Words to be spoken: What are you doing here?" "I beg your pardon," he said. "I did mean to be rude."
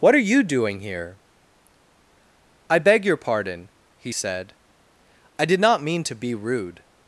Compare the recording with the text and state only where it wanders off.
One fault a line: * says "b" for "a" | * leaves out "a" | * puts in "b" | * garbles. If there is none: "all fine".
* puts in "not"